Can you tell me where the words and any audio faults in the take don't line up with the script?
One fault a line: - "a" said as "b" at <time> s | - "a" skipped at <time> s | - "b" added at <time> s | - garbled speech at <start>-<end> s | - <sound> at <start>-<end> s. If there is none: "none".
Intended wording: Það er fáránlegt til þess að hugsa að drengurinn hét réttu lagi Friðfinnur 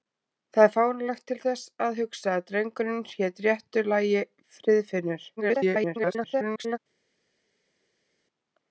- garbled speech at 5.4-6.8 s